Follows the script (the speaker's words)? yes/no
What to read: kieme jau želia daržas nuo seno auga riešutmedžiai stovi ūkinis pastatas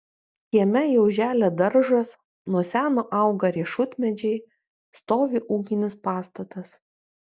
yes